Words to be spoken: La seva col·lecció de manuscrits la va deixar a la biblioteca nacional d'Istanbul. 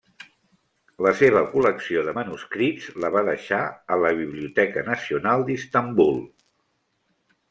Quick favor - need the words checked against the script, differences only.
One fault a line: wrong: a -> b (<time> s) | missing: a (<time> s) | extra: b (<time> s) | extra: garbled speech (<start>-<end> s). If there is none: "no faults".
no faults